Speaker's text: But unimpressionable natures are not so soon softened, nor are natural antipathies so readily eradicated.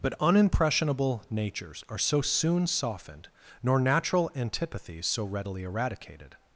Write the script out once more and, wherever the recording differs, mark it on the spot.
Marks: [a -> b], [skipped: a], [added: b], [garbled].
But unimpressionable natures are [skipped: not] so soon softened, nor [skipped: are] natural antipathies so readily eradicated.